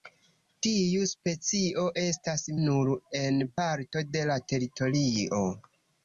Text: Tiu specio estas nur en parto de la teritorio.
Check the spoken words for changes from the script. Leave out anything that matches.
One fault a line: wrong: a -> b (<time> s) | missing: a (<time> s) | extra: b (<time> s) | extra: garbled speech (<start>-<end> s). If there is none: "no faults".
no faults